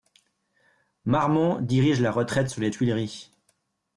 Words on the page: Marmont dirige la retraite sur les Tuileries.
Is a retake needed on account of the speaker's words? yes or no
no